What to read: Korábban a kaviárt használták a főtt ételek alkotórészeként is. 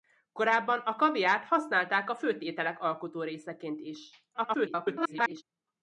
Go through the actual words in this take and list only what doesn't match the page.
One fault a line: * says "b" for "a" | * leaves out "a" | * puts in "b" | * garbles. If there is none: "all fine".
* garbles